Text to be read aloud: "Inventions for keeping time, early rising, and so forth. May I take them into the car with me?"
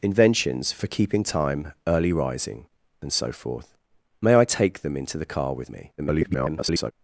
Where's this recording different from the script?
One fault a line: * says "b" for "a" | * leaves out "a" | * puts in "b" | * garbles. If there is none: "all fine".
* garbles